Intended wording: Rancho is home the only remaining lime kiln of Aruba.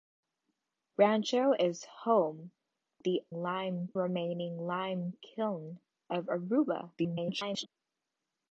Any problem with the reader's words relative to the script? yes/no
yes